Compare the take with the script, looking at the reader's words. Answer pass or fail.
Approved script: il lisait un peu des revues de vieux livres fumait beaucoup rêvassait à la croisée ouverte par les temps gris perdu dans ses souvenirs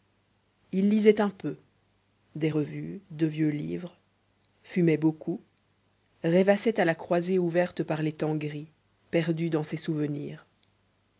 pass